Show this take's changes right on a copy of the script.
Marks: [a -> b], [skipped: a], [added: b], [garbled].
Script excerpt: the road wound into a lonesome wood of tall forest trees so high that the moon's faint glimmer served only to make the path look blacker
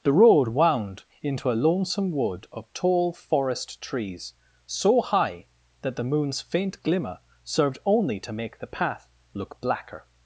the road wound into a lonesome wood of tall forest trees so high that the moon's faint glimmer served only to make the path look blacker